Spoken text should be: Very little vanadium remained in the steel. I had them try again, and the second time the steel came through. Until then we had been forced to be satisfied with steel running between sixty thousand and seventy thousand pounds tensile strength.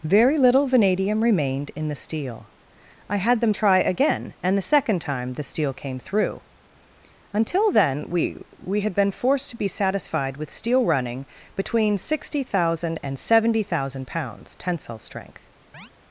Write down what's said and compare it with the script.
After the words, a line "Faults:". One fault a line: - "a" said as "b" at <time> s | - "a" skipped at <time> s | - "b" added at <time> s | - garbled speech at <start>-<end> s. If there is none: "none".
Very little vanadium remained in the steel. I had them try again, and the second time the steel came through. Until then we we had been forced to be satisfied with steel running between sixty thousand and seventy thousand pounds tensile strength.
Faults:
- "we" added at 8.6 s